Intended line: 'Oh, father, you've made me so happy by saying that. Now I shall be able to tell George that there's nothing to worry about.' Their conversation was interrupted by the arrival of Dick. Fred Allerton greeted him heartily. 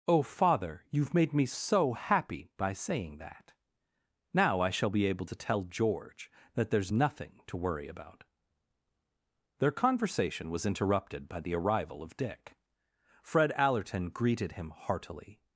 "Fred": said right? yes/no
yes